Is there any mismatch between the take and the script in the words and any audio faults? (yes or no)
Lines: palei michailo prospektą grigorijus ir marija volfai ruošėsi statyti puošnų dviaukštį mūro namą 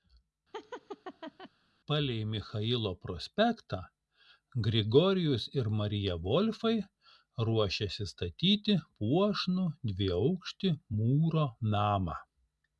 yes